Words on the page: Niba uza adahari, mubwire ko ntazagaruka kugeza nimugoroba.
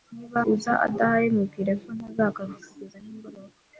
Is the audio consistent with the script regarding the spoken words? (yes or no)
yes